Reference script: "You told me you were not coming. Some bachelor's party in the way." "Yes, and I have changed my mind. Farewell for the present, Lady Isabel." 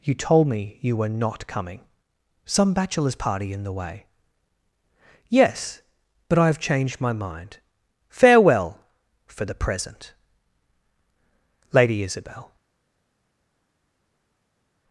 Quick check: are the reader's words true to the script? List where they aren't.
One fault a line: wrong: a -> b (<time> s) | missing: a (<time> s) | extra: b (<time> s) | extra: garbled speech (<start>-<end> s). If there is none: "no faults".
wrong: and -> but (6.3 s)